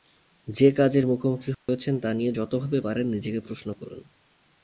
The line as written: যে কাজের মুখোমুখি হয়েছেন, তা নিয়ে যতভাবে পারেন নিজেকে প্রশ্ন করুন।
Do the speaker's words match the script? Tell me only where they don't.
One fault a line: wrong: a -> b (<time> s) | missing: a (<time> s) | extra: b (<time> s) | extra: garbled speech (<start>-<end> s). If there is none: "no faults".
no faults